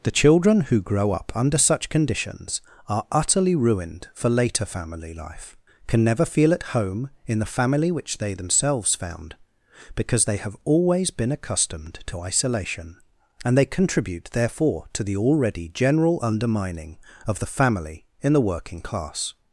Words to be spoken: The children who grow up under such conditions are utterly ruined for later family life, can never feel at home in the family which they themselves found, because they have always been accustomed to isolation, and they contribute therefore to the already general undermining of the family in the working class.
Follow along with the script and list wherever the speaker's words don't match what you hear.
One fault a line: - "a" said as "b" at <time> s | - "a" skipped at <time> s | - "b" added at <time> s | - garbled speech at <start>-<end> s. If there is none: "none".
none